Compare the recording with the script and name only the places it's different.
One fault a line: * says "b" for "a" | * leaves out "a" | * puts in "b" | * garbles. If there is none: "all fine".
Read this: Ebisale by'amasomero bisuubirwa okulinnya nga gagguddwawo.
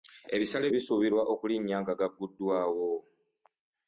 * leaves out "by'amasomero"